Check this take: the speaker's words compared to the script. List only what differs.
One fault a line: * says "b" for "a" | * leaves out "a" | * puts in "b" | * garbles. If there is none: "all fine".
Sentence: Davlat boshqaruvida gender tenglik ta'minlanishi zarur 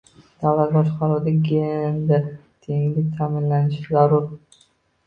all fine